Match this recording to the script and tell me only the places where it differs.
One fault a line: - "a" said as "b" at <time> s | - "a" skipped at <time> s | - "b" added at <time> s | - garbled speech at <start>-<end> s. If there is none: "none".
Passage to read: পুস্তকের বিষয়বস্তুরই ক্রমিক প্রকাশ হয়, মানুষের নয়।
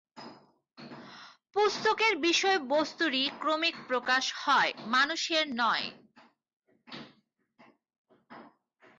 none